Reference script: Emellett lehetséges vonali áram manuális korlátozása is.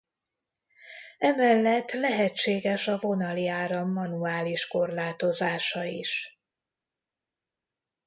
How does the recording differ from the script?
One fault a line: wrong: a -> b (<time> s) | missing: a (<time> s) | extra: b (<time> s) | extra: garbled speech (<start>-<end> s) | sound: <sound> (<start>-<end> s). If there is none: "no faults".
extra: a (2.9 s)